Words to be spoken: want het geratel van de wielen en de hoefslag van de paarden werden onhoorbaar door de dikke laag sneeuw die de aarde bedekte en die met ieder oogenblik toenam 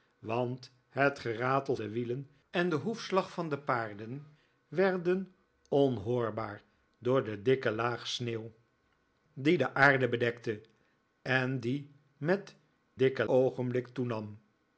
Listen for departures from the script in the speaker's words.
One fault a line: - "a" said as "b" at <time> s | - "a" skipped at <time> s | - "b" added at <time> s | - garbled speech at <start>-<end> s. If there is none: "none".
- "van" skipped at 1.8 s
- "ieder" said as "dikke" at 12.9 s